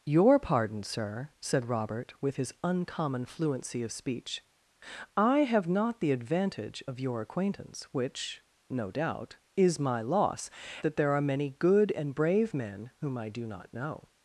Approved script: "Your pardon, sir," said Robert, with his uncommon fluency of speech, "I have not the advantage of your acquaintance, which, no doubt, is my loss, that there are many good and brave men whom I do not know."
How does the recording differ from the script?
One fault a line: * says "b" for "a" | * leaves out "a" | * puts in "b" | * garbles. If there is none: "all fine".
all fine